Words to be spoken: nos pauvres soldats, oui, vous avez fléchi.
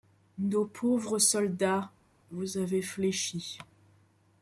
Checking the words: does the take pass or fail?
fail